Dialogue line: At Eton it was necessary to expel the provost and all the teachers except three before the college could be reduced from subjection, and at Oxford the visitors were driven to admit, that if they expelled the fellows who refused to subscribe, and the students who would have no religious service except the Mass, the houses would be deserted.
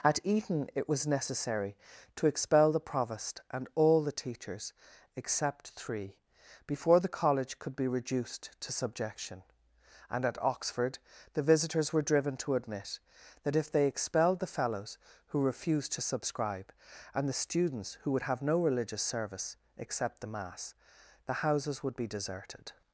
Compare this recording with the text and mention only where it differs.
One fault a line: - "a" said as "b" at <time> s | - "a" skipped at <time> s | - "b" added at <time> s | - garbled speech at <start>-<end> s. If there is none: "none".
- "from" said as "to" at 8.6 s